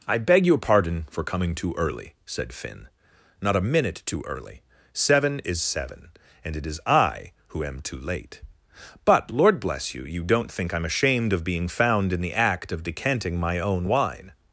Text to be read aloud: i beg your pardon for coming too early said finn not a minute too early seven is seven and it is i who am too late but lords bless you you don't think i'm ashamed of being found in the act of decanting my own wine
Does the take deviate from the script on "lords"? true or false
true